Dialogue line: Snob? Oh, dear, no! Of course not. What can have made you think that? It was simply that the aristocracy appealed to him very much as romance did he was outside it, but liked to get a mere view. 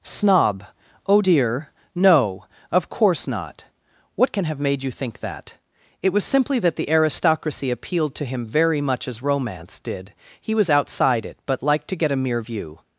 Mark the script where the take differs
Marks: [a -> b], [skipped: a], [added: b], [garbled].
Snob? Oh, dear, no! Of course not. What can have made you think that? It was simply that the aristocracy appealed to him very much as romance did he was outside it, but liked to get a mere view.